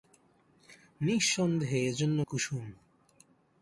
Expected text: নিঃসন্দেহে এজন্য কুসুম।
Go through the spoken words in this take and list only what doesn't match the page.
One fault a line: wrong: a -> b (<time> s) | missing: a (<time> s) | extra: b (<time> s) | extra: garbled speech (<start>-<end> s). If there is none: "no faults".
no faults